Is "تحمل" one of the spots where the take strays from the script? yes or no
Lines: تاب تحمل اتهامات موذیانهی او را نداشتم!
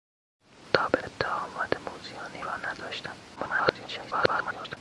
yes